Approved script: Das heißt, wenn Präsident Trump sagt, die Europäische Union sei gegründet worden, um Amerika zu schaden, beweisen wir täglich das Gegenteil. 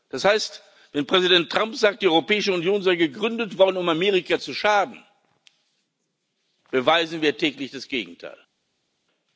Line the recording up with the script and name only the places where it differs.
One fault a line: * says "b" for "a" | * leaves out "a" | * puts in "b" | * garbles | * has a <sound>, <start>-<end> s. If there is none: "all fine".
all fine